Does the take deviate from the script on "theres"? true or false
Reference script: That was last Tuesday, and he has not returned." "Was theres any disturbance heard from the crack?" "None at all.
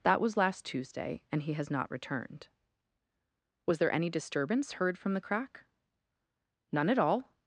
true